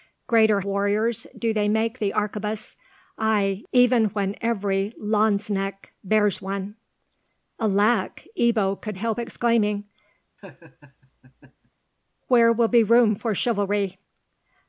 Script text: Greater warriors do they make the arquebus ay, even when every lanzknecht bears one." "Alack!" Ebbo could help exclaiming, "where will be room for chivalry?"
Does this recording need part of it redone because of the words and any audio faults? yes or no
yes